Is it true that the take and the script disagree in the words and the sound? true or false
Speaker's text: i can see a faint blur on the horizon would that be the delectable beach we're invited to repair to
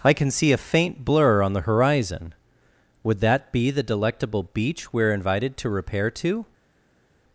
false